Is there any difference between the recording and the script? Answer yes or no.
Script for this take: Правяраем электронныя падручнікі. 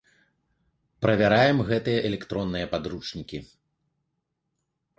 yes